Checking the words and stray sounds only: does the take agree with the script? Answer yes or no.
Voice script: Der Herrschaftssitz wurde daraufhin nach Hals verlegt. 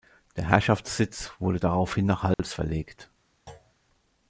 no